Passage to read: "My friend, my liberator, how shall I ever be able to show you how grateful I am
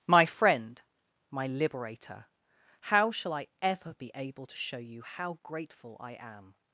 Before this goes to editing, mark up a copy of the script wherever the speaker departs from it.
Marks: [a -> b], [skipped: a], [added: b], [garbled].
"My friend, my liberator, how shall I ever be able to show you how grateful I am